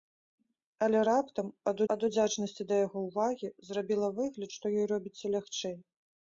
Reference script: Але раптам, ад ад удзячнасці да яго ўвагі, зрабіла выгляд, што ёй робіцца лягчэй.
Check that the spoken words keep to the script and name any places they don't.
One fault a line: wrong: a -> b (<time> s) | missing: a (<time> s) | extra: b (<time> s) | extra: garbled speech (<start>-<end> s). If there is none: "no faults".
no faults